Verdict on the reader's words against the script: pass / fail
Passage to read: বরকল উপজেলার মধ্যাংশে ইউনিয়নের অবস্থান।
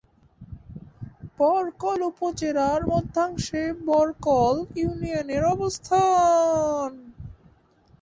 fail